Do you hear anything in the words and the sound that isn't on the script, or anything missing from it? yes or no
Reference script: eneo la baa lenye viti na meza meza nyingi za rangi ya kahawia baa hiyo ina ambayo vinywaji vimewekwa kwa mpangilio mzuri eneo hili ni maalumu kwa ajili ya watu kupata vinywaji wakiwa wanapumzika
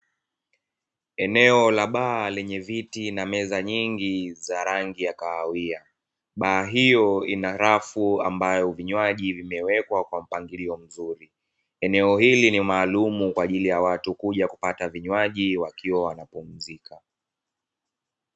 yes